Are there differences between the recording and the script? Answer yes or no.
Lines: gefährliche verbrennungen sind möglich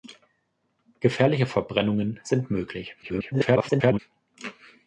yes